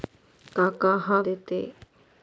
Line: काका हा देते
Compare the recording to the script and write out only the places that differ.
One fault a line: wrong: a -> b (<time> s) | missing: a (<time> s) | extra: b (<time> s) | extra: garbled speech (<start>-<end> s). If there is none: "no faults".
no faults